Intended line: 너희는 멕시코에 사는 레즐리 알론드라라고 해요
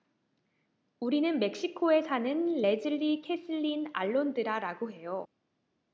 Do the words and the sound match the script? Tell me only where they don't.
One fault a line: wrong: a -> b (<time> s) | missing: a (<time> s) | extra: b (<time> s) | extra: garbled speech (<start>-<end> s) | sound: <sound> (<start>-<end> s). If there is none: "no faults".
wrong: 너희는 -> 우리는 (1.0 s)
extra: 케슬린 (3.2 s)